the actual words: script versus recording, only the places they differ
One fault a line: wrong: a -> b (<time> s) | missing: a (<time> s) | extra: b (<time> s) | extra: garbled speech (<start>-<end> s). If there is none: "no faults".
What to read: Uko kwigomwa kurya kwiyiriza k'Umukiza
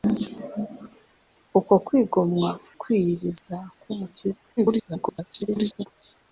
missing: kurya (2.5 s)
extra: garbled speech (4.6-5.9 s)